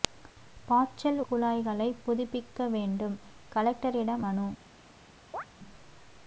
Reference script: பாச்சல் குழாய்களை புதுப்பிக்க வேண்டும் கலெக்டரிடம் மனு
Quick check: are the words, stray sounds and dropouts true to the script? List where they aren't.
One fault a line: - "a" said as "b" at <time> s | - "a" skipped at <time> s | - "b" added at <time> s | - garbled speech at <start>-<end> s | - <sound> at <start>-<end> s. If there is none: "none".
- chirp at 5.3-5.4 s